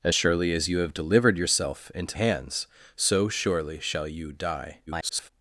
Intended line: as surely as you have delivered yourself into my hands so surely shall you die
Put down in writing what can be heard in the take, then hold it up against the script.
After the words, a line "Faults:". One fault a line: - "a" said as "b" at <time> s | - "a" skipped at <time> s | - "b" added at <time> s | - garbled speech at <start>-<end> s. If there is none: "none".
as surely as you have delivered yourself into hands so surely shall you die [garbled]
Faults:
- "my" skipped at 2.2 s
- garbled speech at 4.9-5.3 s